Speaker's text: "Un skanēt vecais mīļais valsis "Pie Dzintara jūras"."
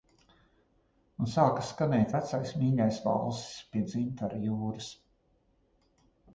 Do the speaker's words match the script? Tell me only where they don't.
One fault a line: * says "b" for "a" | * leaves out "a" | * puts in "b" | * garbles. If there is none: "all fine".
* puts in "sāka"